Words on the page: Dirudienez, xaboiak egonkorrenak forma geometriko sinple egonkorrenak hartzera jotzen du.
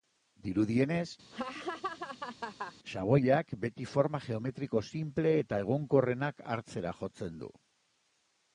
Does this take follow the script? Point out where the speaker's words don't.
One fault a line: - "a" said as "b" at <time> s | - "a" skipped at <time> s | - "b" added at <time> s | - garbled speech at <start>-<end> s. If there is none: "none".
- "egonkorrenak" said as "beti" at 3.7 s
- "eta" added at 5.4 s